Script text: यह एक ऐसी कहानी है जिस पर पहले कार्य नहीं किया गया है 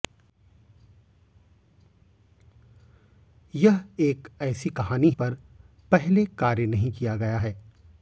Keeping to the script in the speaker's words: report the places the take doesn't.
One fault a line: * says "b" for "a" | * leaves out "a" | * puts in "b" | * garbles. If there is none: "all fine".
* leaves out "है जिस"